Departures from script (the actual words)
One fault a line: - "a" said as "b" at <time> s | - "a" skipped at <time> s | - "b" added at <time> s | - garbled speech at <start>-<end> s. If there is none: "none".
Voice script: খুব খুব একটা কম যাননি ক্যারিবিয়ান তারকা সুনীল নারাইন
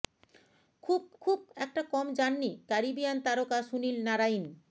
none